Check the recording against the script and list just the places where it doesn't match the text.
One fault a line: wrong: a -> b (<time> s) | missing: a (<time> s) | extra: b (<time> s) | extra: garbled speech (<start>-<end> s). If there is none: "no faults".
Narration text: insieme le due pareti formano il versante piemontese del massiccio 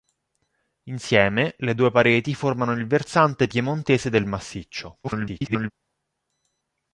extra: garbled speech (5.0-5.7 s)